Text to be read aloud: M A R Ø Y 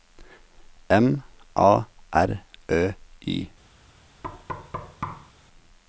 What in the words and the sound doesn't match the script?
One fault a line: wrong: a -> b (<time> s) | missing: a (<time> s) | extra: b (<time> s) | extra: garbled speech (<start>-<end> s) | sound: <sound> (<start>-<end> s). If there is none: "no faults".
sound: thud (4.2-5.3 s)